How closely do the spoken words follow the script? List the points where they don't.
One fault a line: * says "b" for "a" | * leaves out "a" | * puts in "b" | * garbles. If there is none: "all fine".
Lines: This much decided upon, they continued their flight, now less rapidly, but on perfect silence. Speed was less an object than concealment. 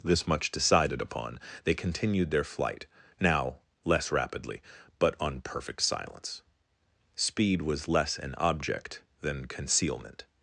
all fine